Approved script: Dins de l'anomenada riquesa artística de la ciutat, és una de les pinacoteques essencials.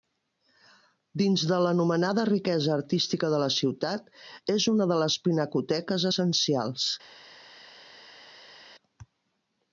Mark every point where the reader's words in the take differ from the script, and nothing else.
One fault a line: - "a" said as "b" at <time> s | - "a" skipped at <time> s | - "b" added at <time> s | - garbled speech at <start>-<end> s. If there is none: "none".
none